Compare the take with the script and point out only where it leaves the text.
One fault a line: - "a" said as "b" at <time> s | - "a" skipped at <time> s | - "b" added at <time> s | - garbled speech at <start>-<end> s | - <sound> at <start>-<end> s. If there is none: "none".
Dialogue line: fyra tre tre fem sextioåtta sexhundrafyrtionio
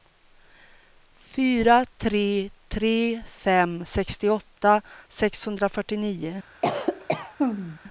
- cough at 6.6-7.8 s